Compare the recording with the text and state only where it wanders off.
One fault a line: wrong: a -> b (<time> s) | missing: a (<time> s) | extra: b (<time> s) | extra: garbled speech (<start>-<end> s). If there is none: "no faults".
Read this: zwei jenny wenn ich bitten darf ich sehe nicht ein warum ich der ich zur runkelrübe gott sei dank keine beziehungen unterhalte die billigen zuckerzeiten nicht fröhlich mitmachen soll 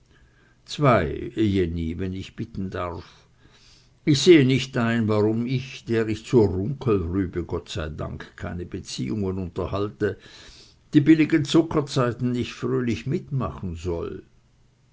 no faults